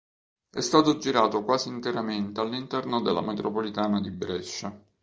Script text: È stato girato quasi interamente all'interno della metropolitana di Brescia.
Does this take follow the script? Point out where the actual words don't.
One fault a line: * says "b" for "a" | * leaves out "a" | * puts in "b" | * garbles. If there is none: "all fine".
all fine